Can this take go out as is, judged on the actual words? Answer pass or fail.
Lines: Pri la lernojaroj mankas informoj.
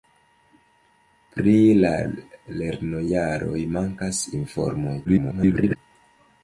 fail